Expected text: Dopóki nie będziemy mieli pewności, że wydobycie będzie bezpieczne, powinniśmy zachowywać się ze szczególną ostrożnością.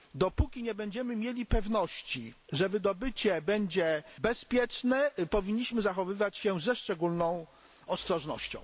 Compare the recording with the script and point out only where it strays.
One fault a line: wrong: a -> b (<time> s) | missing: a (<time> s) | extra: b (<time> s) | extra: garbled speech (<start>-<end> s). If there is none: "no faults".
no faults